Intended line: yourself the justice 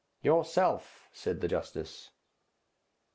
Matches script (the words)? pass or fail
fail